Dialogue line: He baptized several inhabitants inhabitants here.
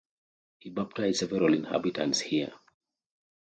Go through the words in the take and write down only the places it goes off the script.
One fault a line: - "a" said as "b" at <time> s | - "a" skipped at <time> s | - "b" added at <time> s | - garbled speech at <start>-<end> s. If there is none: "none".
- "inhabitants" skipped at 2.2 s